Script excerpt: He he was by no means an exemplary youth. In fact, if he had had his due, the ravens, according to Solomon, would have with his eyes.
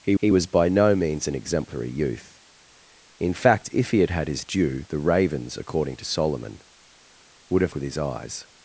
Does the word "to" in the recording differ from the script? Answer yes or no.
no